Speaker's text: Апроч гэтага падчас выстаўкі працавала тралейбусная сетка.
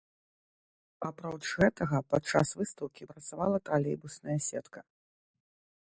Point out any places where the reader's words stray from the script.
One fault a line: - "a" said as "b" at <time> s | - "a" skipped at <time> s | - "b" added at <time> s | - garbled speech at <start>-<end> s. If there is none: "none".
none